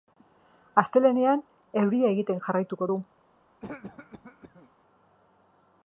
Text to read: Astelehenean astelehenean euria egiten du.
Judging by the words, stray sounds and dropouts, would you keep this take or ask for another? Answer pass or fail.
fail